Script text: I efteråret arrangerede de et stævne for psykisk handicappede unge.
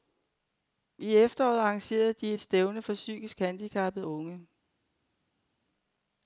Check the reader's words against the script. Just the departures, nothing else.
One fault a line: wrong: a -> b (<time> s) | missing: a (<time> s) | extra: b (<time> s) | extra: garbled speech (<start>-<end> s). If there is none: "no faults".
no faults